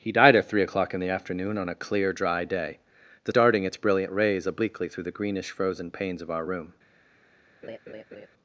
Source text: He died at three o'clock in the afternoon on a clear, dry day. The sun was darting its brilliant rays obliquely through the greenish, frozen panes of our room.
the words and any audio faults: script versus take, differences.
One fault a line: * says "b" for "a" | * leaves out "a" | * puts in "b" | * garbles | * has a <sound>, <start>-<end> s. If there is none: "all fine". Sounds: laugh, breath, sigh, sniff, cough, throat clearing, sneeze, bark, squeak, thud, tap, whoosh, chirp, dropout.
* leaves out "sun was"
* has a laugh, 7.6-8.3 s